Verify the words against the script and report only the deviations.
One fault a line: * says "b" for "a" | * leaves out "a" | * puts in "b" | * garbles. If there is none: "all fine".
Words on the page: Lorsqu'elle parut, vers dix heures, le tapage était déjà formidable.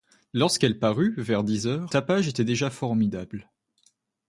* leaves out "le"